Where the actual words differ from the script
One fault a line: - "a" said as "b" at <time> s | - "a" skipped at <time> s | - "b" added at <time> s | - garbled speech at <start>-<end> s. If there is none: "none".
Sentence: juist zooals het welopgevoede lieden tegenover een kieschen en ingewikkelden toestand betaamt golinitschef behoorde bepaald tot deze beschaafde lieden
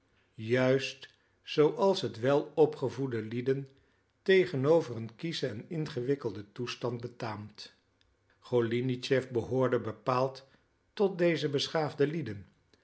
none